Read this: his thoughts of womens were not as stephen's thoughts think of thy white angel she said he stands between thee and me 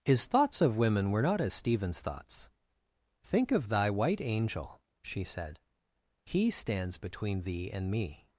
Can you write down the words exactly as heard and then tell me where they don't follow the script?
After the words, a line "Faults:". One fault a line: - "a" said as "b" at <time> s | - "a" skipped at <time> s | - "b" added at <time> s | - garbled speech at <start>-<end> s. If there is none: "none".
his thoughts of women were not as stephen's thoughts think of thy white angel she said he stands between thee and me
Faults:
- "womens" said as "women" at 0.8 s